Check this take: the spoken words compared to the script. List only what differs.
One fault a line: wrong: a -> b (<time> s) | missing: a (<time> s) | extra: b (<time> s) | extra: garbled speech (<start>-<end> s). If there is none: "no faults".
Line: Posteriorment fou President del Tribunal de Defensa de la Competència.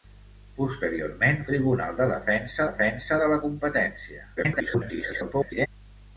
missing: fou President del (1.4 s)
extra: Defensa (2.7 s)
extra: garbled speech (4.4-5.7 s)